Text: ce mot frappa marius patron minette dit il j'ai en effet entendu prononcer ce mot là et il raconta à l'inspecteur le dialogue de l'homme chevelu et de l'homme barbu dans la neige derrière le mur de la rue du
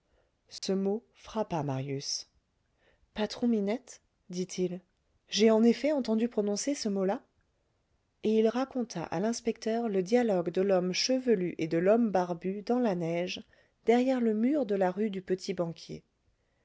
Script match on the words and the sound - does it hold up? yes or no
no